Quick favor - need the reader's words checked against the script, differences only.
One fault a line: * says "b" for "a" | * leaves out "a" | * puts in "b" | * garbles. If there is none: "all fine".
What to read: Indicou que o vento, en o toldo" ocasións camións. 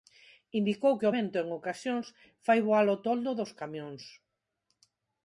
* puts in "ocasións fai voar"
* says "dos" for "ocasións"